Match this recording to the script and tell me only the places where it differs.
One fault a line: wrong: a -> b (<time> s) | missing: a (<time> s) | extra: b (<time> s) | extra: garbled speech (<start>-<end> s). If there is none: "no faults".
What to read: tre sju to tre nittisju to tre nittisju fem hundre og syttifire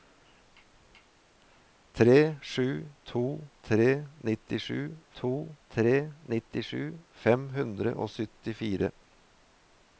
no faults